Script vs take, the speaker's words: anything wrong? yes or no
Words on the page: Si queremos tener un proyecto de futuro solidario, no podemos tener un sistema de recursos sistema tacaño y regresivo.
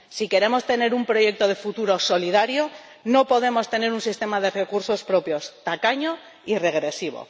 yes